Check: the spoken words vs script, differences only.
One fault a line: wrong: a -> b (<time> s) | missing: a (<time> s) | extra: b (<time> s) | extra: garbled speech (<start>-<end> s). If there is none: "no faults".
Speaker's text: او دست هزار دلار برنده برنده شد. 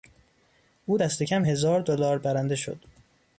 extra: کم (1.2 s)
missing: برنده (2.5 s)